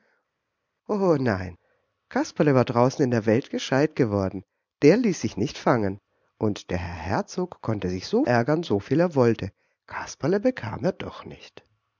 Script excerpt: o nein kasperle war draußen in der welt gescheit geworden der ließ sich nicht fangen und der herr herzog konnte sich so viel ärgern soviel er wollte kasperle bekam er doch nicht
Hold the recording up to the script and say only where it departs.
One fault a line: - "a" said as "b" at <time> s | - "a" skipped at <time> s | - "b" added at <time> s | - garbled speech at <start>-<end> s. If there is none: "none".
- "viel" skipped at 8.2 s